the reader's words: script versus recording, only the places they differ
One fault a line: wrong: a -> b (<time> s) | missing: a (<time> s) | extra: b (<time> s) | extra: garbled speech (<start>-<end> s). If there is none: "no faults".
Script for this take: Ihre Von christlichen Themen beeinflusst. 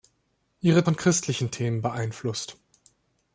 no faults